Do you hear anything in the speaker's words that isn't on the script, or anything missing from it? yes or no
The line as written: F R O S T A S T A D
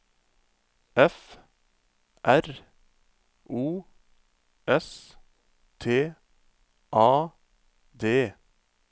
yes